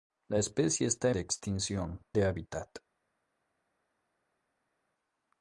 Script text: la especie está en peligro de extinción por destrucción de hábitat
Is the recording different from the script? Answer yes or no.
yes